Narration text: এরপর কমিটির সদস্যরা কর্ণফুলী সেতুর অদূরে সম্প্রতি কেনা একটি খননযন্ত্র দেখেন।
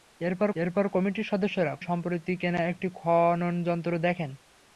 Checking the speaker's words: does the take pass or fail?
fail